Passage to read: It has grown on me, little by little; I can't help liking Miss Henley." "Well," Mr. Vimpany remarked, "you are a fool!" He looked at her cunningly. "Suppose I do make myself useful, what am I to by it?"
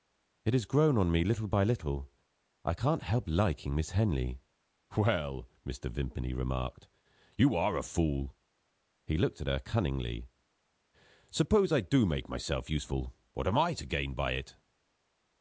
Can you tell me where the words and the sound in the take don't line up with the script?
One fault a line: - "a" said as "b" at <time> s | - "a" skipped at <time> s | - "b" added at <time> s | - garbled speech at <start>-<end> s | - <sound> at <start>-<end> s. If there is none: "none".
- "gain" added at 13.8 s